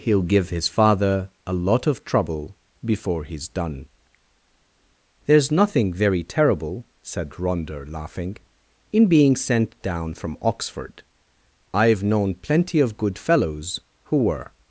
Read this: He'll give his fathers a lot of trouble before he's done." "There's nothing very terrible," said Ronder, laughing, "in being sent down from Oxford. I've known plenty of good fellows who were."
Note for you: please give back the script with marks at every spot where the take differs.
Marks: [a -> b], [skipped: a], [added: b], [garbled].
He'll give his [fathers -> father] a lot of trouble before he's done." "There's nothing very terrible," said Ronder, laughing, "in being sent down from Oxford. I've known plenty of good fellows who were."